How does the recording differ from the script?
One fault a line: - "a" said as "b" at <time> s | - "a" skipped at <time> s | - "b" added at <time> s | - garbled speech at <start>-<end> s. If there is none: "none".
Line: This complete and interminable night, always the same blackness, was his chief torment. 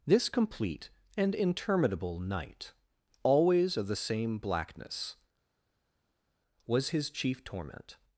- "of" added at 3.7 s